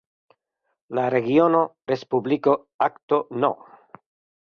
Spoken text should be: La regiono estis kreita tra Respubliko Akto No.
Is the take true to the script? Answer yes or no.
no